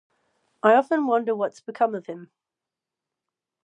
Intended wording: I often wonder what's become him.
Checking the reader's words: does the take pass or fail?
fail